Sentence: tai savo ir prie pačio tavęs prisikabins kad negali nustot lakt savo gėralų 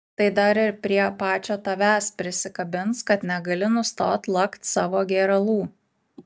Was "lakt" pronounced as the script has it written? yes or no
yes